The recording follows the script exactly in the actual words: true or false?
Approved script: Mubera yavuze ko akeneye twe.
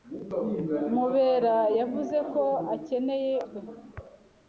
true